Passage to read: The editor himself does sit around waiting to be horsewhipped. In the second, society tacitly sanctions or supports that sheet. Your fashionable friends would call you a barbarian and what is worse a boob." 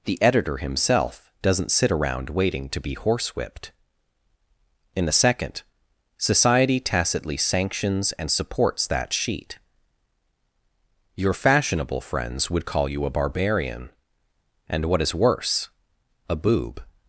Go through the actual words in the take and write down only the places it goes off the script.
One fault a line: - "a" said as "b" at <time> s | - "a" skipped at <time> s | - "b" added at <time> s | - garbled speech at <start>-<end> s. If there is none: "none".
- "does" said as "doesn't" at 1.4 s
- "or" said as "and" at 8.1 s